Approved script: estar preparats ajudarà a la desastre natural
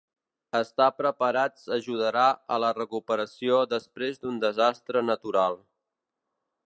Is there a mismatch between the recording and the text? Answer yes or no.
yes